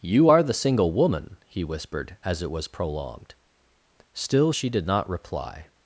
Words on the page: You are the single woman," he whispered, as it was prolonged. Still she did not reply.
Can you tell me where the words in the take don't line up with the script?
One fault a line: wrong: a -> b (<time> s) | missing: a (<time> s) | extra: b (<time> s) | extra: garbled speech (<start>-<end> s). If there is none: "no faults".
no faults